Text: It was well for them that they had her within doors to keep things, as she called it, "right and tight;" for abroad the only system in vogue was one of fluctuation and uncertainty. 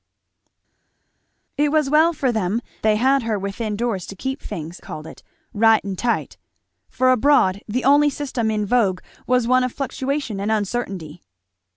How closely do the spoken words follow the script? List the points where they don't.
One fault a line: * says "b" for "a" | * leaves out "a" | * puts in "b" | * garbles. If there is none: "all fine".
* leaves out "that"
* leaves out "as she"